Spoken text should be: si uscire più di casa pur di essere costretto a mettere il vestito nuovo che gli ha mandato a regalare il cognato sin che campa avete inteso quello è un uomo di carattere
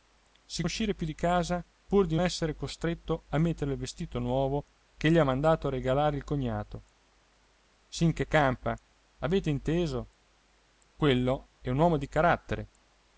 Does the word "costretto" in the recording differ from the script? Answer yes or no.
no